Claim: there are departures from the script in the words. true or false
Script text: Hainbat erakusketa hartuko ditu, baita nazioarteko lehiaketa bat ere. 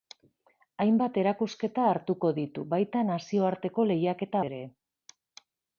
true